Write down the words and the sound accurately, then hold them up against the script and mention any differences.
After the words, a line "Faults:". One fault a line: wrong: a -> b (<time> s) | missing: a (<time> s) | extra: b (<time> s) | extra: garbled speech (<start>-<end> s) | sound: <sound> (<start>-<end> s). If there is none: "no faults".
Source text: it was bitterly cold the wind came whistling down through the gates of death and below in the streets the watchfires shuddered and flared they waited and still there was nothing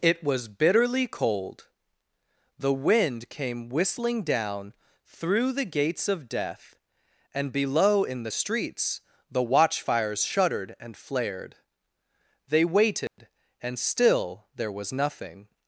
it was bitterly cold the wind came whistling down through the gates of death and below in the streets the watchfires shuddered and flared they waited and still there was nothing
Faults:
sound: dropout (13.1-13.2 s)